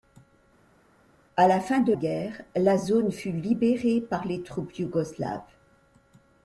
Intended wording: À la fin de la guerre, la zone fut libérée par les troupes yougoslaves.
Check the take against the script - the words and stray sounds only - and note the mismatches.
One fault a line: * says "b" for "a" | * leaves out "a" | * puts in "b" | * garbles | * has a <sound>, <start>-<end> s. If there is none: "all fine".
* leaves out "la"